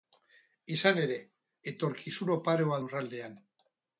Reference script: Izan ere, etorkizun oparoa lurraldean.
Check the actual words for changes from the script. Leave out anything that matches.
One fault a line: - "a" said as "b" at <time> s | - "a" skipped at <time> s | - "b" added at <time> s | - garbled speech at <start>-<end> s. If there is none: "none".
none